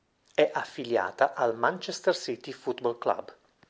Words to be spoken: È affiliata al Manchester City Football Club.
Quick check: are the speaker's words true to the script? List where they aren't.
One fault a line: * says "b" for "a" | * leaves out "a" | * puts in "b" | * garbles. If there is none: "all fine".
all fine